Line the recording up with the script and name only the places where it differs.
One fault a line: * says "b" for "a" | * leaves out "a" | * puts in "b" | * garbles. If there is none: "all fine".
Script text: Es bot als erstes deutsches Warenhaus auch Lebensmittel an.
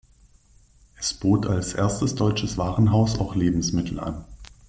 all fine